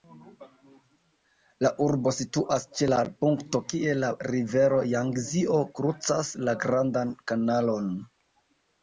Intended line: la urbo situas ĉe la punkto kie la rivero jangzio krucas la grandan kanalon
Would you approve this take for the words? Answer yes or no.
yes